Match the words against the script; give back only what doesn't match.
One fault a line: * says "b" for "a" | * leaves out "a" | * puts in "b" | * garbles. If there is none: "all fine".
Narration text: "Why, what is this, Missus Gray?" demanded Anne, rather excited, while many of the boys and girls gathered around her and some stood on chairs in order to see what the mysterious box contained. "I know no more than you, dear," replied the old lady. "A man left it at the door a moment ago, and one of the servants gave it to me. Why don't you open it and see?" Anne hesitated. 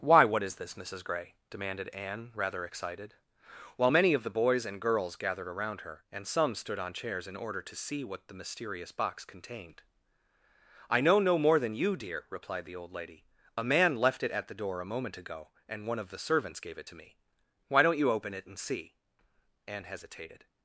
all fine